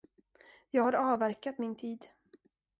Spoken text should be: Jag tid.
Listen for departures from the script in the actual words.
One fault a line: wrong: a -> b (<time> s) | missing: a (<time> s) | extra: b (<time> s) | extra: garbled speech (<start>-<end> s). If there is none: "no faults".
extra: har avverkat min (0.8 s)